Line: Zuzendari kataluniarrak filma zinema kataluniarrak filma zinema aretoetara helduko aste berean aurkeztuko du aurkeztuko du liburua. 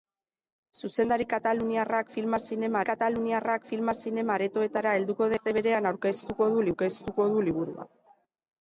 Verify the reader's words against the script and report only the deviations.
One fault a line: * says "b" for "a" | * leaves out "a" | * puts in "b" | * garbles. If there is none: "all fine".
all fine